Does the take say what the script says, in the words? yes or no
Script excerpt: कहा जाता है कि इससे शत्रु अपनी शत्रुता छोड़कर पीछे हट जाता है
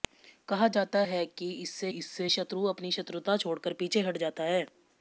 no